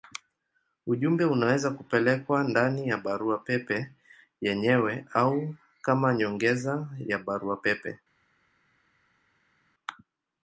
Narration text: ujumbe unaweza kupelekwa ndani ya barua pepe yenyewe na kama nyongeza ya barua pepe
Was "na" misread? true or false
true